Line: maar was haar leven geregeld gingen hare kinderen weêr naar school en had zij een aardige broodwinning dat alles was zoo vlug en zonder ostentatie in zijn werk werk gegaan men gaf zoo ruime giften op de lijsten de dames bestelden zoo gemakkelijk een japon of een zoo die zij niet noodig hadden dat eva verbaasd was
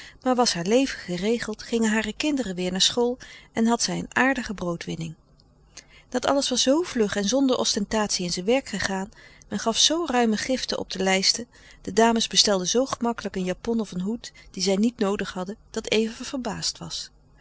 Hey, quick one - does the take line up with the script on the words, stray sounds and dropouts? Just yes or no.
no